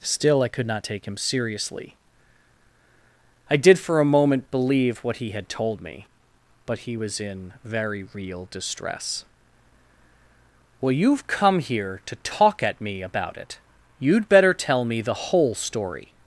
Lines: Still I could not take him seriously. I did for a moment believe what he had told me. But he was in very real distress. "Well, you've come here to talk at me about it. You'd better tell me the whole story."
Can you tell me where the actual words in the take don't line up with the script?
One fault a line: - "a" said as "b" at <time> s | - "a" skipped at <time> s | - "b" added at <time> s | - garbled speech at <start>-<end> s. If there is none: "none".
none